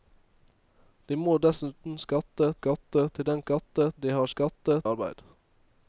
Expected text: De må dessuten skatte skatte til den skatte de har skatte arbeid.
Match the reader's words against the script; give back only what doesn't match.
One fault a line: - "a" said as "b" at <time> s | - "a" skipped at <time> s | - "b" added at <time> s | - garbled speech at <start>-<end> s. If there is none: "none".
none